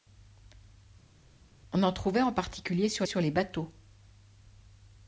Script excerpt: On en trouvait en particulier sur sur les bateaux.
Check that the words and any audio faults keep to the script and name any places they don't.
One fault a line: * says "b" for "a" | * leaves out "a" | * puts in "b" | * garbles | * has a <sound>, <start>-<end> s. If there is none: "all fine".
all fine